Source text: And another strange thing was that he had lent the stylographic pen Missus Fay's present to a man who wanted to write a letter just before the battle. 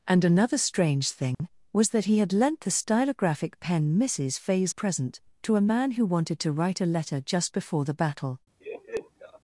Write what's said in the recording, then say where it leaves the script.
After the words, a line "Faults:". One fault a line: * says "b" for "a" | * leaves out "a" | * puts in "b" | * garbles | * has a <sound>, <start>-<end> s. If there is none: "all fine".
And another strange thing was that he had lent the stylographic pen Missus Fay's present to a man who wanted to write a letter just before the battle.
Faults:
* has a dropout, 1.3-1.4 s
* has a laugh, 8.6-9.4 s